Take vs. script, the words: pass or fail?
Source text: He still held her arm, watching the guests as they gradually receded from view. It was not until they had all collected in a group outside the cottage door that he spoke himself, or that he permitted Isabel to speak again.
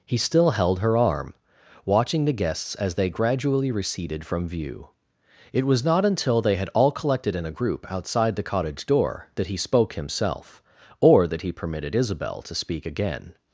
pass